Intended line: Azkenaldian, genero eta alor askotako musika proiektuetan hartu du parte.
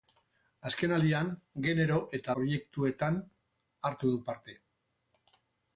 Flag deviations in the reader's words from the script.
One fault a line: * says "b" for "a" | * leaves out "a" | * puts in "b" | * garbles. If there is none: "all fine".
* leaves out "alor askotako musika"